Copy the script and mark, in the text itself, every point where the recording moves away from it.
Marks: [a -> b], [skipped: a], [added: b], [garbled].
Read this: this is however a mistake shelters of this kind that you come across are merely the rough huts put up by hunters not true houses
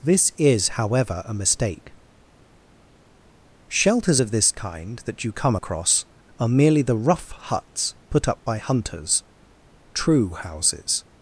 this is however a mistake shelters of this kind that you come across are merely the rough huts put up by hunters [skipped: not] true houses